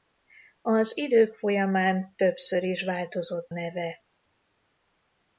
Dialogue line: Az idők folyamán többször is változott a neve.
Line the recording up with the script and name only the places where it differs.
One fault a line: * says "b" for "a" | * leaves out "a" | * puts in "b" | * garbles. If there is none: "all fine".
* leaves out "a"